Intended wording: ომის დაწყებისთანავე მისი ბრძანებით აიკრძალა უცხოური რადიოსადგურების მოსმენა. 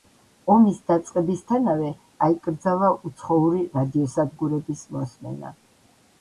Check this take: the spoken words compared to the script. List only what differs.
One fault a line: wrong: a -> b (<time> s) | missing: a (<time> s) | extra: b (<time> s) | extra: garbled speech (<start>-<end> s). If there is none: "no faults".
missing: მისი ბრძანებით (1.9 s)